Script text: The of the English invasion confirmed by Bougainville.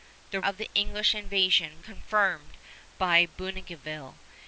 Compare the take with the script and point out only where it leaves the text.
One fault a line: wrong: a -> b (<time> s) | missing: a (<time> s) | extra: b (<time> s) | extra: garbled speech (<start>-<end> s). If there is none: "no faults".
no faults